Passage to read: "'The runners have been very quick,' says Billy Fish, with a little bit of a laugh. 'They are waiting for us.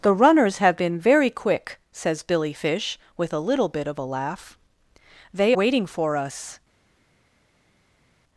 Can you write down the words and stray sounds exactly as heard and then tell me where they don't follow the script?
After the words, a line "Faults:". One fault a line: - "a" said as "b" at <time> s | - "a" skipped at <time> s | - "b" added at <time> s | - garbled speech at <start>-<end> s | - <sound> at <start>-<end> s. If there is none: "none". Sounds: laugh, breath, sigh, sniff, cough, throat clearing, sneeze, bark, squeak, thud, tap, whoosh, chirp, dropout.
"'The runners have been very quick,' says Billy Fish, with a little bit of a laugh. 'They waiting for us.
Faults:
- "are" skipped at 5.5 s